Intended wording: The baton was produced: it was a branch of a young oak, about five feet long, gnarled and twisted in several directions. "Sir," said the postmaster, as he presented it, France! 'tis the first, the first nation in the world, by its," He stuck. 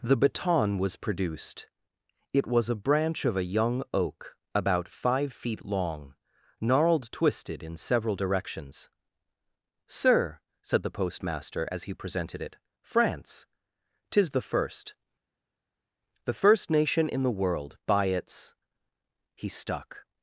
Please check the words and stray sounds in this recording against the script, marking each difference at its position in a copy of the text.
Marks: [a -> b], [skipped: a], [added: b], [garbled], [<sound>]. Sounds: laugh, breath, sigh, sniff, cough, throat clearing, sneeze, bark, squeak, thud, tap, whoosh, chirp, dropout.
The baton was produced: it was a branch of a young oak, about five feet long, gnarled [skipped: and] twisted in several directions. "Sir," said the postmaster, as he presented it, France! 'tis the first, the first nation in the world, by its," He stuck.